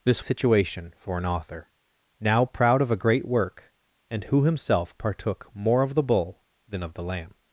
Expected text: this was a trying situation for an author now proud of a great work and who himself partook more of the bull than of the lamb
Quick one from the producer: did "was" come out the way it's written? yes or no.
no